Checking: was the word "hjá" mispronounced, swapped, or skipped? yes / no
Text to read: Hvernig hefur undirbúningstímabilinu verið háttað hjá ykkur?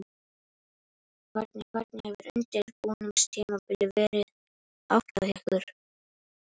yes